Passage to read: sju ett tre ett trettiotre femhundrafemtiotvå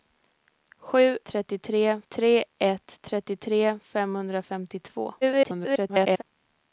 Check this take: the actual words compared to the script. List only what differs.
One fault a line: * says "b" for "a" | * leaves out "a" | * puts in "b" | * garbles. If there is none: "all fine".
* says "trettiotre" for "ett"
* garbles